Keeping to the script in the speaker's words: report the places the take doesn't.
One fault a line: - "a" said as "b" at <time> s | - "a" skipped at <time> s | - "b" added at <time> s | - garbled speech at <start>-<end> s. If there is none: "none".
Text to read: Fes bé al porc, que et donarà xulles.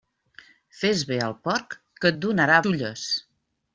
none